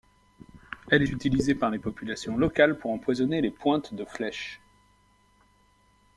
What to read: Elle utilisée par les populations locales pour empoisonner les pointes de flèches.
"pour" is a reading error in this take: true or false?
false